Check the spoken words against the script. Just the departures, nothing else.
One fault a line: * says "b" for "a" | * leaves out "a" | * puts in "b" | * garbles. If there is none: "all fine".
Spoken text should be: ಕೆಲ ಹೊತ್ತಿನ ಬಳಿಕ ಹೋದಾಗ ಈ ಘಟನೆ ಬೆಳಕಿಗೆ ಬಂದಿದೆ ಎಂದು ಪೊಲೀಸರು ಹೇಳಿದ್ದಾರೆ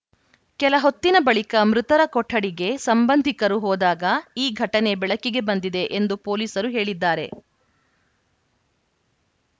* puts in "ಮೃತರ ಕೊಠಡಿಗೆ ಸಂಬಂಧಿಕರು"